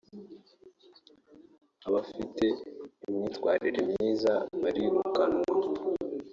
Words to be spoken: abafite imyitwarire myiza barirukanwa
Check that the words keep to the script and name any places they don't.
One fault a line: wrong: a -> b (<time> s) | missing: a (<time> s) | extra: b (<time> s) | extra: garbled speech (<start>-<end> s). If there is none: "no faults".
no faults